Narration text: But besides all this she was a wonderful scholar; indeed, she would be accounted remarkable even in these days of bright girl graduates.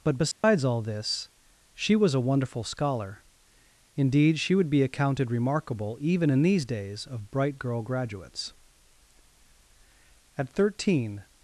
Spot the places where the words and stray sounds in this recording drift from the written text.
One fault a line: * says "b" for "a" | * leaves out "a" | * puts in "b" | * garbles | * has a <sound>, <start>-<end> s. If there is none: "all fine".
* has a dropout, 0.3-0.4 s
* puts in "At thirteen"